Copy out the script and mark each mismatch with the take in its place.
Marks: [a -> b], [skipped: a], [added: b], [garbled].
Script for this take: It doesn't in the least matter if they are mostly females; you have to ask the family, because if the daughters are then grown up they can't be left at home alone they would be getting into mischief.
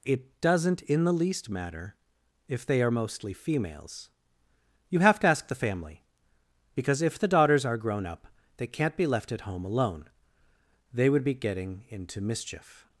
It doesn't in the least matter if they are mostly females; you have to ask the family, because if the daughters are [skipped: then] grown up they can't be left at home alone they would be getting into mischief.